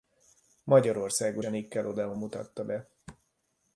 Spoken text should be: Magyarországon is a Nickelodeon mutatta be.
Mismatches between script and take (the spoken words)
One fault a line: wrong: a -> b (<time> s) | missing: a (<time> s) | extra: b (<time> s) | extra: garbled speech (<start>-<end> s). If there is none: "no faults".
missing: is (1.4 s)